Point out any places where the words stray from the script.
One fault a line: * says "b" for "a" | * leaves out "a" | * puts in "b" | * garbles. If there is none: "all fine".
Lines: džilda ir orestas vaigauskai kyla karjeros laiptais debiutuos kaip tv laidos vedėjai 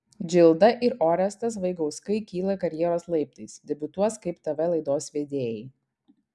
all fine